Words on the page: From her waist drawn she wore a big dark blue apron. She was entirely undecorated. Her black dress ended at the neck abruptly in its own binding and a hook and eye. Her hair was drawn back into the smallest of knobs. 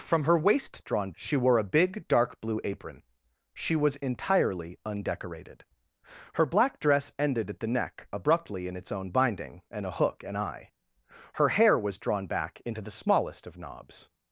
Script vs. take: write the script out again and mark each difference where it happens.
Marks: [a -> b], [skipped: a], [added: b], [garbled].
From her waist drawn she wore a big dark blue apron. She was entirely undecorated. Her black dress ended at the neck abruptly in its own binding and a hook and eye. Her hair was drawn back into the smallest of knobs.